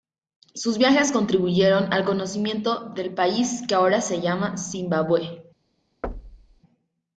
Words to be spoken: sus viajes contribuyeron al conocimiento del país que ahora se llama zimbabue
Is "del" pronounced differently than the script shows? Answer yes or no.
no